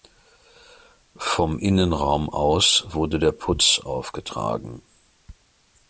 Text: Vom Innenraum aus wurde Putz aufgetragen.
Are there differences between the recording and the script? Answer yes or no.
yes